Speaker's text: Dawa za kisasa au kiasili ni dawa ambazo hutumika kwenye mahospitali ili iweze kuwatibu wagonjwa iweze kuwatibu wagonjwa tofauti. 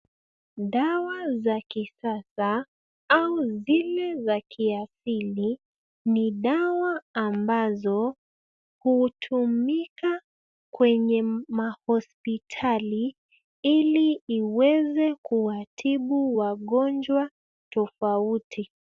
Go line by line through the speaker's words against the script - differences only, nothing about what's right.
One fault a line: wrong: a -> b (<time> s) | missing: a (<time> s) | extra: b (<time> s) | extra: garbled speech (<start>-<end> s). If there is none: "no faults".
extra: zile za (3.6 s)
missing: iweze kuwatibu wagonjwa (17.3 s)